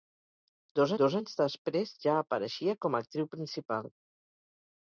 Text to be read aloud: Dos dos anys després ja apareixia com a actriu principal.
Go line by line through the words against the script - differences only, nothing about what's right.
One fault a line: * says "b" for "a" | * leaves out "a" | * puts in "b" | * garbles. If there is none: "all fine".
all fine